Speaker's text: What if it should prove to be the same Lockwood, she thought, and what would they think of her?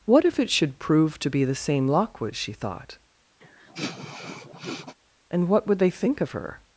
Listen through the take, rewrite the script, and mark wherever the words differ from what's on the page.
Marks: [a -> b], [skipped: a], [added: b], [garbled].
What if it should prove to be the same Lockwood, she thought, and what would they think of her?